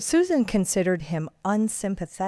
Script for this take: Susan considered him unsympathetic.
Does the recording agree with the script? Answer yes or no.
yes